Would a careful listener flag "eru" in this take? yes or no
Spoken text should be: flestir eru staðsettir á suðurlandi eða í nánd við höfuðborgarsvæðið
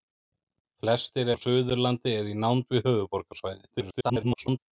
yes